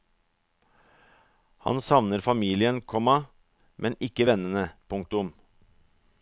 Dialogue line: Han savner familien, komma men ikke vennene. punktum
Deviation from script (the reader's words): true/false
false